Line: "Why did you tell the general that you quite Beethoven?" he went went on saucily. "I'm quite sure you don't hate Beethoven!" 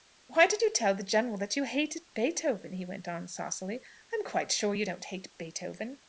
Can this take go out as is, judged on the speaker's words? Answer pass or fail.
fail